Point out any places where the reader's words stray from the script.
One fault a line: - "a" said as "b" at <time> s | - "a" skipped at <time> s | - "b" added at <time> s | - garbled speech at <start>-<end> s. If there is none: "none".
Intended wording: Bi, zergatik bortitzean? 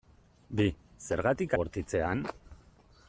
none